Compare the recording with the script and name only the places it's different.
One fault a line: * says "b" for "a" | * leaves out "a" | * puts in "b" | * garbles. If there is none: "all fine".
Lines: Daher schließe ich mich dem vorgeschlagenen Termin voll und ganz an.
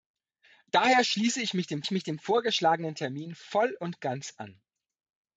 * puts in "ich mich dem"